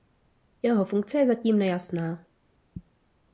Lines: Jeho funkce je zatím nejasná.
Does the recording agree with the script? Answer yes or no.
yes